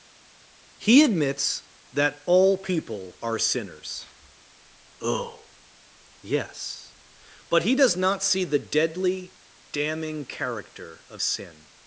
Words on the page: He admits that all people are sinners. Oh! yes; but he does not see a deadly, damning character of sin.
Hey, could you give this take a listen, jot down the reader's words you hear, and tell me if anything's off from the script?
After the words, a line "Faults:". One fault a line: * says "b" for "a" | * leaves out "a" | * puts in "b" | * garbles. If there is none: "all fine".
He admits that all people are sinners. Oh! yes; but he does not see the deadly, damning character of sin.
Faults:
* says "the" for "a"